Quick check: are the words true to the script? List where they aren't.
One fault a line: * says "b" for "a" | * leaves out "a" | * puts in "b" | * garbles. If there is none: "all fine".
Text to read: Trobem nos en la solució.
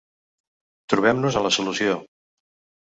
all fine